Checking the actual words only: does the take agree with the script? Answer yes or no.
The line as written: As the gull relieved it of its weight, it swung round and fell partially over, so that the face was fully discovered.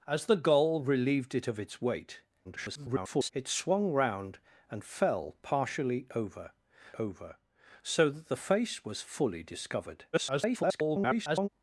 no